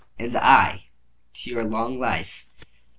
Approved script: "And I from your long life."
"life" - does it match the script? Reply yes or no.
yes